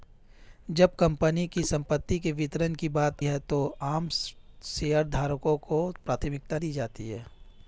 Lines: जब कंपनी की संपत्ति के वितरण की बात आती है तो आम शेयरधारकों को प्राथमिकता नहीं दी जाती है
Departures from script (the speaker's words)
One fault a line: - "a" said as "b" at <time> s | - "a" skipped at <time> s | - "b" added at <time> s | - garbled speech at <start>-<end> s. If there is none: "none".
- "आती" skipped at 3.2 s
- "नहीं" skipped at 6.6 s